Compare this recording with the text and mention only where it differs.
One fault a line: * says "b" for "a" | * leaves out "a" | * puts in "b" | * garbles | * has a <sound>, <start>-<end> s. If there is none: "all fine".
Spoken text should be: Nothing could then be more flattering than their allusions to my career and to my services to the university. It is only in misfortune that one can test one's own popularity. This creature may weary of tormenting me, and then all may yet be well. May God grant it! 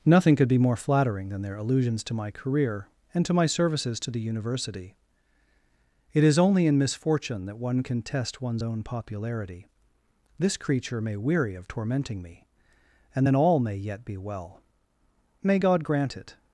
* leaves out "then"